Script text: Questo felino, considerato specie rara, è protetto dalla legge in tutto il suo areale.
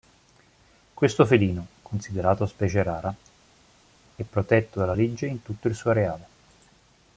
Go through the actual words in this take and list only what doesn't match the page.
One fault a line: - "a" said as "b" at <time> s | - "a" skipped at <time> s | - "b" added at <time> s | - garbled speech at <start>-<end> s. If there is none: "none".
none